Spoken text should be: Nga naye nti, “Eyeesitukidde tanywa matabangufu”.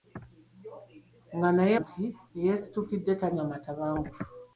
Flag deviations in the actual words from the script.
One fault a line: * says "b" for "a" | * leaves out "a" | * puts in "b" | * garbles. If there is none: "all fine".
all fine